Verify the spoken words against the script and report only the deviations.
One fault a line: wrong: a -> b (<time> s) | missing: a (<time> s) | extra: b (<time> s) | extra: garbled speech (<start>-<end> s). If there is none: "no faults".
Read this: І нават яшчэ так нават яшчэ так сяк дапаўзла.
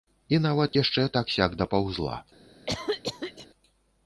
missing: нават яшчэ так (1.3 s)